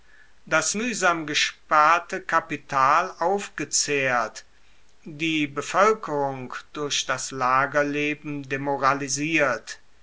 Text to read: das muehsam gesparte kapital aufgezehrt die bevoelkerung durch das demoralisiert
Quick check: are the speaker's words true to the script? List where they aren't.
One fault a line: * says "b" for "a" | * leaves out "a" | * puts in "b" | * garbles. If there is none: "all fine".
* puts in "lagerleben"